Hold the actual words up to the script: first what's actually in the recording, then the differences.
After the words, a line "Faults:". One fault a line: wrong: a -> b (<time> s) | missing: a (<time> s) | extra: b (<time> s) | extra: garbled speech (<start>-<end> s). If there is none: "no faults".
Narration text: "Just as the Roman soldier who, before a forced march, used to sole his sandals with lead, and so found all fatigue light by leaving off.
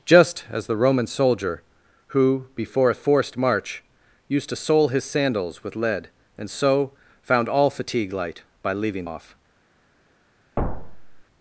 "Just as the Roman soldier who, before a forced march, used to sole his sandals with lead, and so found all fatigue light by leaving off.
Faults:
no faults